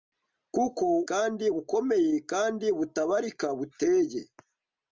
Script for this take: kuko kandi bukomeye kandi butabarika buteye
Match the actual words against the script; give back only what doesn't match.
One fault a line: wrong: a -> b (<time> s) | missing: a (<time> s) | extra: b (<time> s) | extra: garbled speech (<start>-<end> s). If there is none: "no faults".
no faults